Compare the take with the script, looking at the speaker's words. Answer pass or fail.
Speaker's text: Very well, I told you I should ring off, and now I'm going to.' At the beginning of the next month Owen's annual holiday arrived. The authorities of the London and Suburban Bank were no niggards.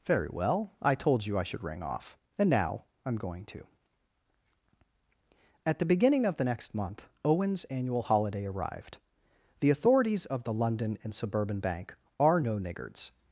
fail